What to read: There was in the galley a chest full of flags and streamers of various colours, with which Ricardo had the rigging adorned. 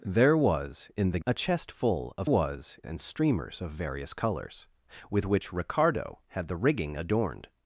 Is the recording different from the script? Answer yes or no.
yes